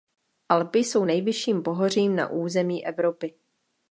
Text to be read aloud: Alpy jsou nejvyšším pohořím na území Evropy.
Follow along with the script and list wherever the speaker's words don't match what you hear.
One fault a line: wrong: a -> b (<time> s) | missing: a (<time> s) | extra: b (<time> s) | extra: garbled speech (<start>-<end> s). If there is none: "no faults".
no faults